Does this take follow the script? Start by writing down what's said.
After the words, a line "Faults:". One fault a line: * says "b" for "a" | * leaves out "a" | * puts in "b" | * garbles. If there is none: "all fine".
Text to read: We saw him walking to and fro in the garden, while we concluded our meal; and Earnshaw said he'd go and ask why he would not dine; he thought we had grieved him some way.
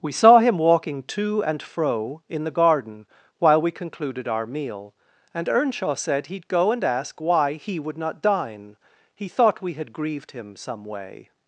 We saw him walking to and fro in the garden, while we concluded our meal; and Earnshaw said he'd go and ask why he would not dine; he thought we had grieved him some way.
Faults:
all fine